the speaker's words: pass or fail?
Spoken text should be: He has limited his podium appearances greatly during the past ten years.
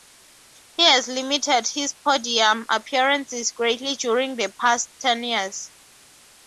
pass